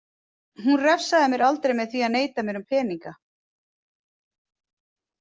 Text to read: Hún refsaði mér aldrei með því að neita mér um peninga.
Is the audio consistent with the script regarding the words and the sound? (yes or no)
yes